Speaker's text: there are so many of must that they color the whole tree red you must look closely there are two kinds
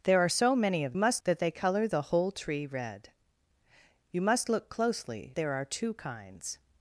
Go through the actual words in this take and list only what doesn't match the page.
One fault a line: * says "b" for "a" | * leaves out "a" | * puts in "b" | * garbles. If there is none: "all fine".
all fine